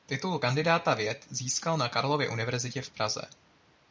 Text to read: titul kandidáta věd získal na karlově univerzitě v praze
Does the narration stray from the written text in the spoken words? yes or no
no